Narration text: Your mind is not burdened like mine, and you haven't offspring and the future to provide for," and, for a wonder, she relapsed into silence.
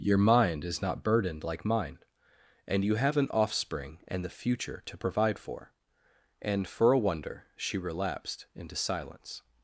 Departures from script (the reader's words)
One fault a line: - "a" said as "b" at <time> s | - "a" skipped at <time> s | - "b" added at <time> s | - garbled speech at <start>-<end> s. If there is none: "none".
- "haven't" said as "have an" at 3.0 s